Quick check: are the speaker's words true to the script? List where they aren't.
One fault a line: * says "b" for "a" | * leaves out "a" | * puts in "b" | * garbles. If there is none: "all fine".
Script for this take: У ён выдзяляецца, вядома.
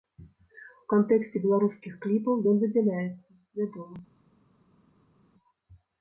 * puts in "кантэксце беларускіх кліпаў"